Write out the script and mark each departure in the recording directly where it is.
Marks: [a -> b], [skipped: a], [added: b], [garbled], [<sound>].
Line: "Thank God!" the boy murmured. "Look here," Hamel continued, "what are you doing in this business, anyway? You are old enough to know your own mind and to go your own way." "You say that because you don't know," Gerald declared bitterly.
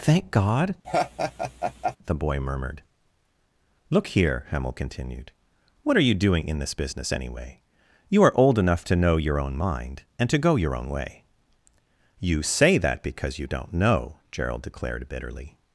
"Thank God!" [laugh] the boy murmured. "Look here," Hamel continued, "what are you doing in this business, anyway? You are old enough to know your own mind and to go your own way." "You say that because you don't know," Gerald declared bitterly.